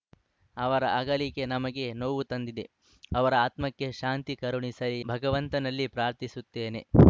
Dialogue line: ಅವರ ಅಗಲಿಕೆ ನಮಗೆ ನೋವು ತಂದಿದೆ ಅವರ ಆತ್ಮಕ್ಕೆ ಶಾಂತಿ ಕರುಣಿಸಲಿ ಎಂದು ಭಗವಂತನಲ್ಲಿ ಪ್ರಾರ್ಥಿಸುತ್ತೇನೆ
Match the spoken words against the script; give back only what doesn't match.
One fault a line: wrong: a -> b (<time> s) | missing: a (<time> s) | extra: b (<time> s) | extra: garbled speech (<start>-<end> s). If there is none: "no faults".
missing: ಎಂದು (5.0 s)